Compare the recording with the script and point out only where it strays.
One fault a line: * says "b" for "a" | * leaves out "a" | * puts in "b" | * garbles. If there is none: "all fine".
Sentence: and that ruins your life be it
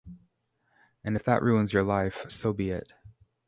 * puts in "if"
* puts in "so"